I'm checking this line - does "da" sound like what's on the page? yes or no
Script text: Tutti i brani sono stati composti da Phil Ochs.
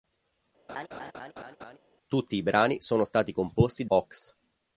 no